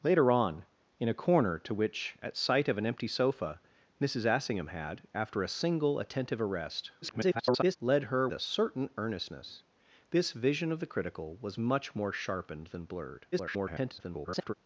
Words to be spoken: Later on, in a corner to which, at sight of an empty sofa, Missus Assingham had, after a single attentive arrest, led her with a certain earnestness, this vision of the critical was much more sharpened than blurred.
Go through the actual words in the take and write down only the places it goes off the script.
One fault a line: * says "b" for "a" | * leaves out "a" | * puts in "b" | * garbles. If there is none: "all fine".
* garbles
* leaves out "with"
* garbles